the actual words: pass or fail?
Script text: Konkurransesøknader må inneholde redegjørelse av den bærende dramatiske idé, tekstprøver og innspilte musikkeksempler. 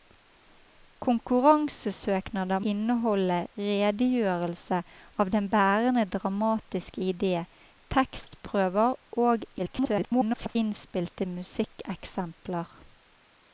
fail